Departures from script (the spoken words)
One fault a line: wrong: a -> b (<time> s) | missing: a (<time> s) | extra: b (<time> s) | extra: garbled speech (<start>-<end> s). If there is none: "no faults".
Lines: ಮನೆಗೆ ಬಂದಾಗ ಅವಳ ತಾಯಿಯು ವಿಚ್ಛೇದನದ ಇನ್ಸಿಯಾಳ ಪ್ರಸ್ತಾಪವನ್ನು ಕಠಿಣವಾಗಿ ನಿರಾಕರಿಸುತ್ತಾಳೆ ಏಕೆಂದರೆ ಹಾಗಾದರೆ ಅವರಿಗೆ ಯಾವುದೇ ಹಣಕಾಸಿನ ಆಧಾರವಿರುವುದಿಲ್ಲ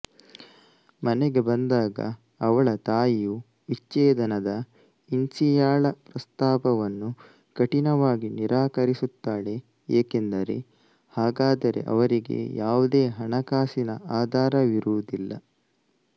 no faults